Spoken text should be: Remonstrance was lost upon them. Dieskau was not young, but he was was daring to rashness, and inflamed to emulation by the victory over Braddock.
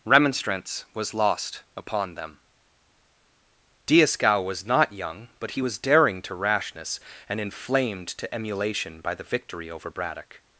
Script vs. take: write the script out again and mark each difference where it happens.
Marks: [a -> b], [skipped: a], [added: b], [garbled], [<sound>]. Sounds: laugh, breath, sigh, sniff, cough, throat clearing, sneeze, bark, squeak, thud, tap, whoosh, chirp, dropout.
Remonstrance was lost upon them. Dieskau was not young, but he was [skipped: was] daring to rashness, and inflamed to emulation by the victory over Braddock.